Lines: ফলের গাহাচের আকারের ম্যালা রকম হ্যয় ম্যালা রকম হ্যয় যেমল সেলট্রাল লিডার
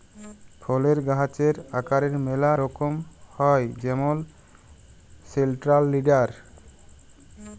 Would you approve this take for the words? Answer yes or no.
no